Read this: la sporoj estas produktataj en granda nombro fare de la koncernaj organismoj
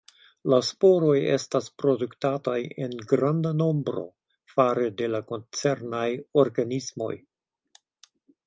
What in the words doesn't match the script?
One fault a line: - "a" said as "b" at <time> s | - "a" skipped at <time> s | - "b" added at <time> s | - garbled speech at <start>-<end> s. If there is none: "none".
none